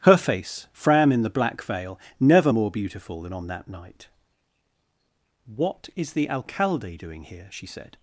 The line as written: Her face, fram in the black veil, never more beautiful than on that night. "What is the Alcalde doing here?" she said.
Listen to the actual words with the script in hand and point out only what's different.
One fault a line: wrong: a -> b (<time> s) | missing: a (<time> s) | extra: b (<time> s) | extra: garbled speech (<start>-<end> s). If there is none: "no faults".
no faults